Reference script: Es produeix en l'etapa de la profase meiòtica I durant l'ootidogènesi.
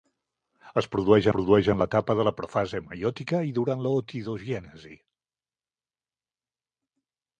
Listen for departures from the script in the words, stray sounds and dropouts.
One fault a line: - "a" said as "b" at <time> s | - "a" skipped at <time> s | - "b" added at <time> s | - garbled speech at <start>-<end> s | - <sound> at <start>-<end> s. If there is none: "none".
- "produeix" added at 1.3 s